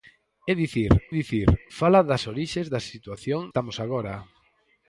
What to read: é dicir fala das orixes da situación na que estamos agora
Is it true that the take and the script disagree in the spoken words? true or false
true